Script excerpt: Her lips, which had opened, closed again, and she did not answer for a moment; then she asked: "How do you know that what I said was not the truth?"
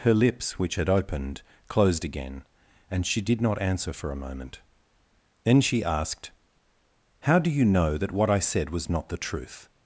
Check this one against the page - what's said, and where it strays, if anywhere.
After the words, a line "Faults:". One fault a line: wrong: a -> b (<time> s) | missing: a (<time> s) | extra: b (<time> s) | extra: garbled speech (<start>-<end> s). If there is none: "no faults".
Her lips, which had opened, closed again, and she did not answer for a moment; then she asked: "How do you know that what I said was not the truth?"
Faults:
no faults